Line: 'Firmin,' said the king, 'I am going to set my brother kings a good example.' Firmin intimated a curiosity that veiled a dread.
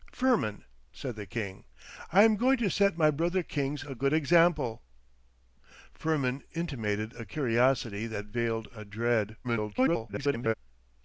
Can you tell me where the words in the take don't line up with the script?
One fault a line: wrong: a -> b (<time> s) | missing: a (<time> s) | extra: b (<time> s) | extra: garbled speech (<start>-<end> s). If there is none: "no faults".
extra: garbled speech (9.4-10.5 s)